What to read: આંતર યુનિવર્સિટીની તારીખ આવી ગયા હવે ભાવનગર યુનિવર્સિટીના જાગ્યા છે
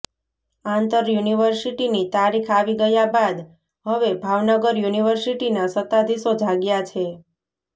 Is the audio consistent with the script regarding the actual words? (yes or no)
no